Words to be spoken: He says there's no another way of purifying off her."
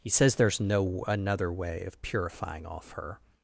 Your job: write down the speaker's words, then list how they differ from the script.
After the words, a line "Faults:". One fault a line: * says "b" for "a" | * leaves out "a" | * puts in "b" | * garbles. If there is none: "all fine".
He says there's no another way of purifying off her."
Faults:
all fine